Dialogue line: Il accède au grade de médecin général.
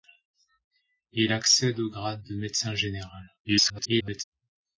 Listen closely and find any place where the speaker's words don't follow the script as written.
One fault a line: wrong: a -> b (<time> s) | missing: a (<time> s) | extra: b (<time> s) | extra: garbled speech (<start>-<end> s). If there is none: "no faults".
extra: garbled speech (3.4-4.2 s)